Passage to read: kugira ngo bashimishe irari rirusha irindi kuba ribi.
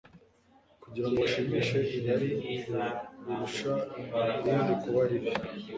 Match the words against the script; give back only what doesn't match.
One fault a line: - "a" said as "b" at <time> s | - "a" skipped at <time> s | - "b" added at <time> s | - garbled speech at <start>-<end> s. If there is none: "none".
none